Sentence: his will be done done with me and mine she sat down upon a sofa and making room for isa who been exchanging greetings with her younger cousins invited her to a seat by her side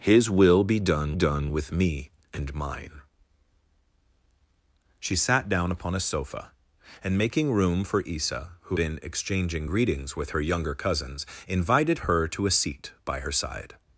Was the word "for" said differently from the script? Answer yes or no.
no